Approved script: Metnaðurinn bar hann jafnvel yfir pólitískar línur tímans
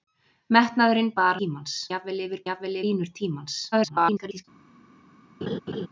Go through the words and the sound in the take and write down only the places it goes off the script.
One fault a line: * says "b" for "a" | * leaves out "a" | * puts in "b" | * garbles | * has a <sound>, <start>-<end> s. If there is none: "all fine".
* says "tímans" for "hann"
* says "jafnvel" for "pólitískar"
* garbles
* has a laugh, 5.4-5.9 s